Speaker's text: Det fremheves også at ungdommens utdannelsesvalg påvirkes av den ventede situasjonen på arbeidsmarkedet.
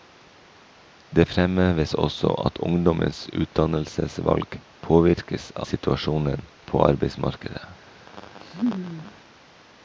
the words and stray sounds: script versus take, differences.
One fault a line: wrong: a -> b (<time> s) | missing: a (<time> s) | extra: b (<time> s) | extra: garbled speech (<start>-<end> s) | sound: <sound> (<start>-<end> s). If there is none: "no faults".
missing: av den ventede (5.5 s)
sound: laugh (8.1-9.2 s)